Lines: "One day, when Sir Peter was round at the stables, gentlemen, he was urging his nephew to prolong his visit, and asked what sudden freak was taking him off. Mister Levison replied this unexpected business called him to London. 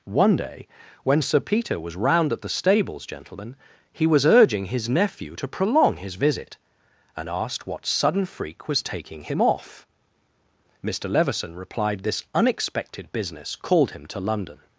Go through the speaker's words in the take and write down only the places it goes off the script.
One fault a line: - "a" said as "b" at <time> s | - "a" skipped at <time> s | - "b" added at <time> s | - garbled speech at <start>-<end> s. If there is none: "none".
none